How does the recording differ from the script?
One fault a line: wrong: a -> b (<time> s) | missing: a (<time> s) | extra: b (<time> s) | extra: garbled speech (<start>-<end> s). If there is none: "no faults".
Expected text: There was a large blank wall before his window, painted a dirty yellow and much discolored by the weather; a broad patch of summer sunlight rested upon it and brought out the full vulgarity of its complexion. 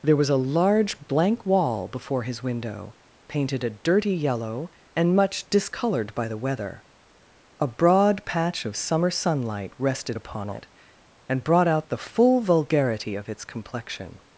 no faults